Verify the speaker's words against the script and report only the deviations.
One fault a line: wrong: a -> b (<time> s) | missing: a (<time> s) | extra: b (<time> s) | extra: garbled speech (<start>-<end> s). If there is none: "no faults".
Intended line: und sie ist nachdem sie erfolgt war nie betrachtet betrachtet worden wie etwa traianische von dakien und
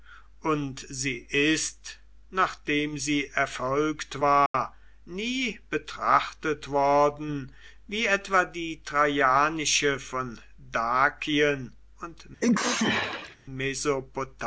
missing: betrachtet (6.7 s)
extra: die (8.4 s)